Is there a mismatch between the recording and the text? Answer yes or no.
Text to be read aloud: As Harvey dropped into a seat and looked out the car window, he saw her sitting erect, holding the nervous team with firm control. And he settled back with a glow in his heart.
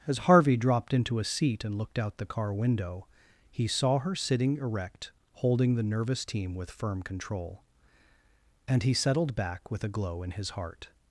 no